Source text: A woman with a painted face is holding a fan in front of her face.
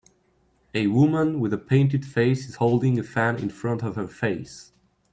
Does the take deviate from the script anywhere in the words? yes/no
no